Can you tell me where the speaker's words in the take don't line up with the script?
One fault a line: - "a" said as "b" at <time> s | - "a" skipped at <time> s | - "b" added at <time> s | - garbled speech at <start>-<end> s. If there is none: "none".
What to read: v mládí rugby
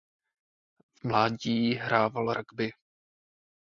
- "hrával" added at 1.7 s